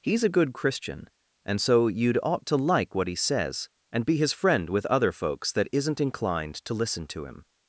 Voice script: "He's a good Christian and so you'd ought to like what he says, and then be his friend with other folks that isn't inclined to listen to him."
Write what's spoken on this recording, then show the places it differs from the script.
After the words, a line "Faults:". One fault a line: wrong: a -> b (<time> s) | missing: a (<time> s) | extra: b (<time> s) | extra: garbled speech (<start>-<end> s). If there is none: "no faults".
"He's a good Christian and so you'd ought to like what he says, and be his friend with other folks that isn't inclined to listen to him."
Faults:
missing: then (4.1 s)